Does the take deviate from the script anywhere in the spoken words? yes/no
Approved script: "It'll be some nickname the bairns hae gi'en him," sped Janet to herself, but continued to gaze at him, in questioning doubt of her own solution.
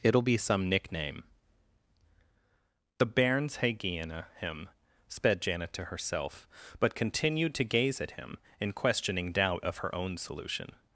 no